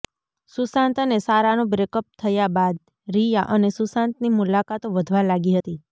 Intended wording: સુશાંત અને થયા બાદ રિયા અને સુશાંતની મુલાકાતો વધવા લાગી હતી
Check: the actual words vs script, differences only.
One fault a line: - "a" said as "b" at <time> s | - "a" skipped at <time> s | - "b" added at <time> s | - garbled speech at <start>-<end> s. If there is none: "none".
- "સારાનું બ્રેકઅપ" added at 1.2 s